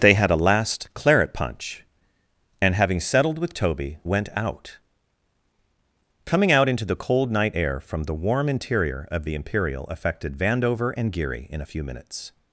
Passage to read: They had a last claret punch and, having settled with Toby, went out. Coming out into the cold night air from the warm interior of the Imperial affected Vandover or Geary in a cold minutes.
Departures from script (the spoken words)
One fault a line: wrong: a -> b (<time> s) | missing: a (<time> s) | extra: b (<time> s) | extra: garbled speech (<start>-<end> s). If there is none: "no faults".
wrong: or -> and (11.0 s)
wrong: cold -> few (11.6 s)